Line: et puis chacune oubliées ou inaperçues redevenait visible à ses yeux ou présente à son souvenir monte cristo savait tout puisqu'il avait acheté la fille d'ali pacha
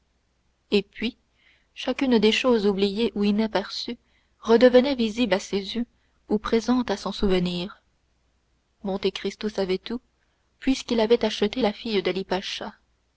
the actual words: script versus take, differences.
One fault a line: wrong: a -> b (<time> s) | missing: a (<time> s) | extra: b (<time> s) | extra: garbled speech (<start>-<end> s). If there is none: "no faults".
extra: des choses (2.2 s)